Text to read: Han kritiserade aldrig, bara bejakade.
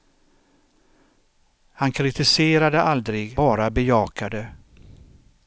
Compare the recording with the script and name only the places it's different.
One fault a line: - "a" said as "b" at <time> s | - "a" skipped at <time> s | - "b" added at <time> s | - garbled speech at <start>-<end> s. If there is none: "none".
none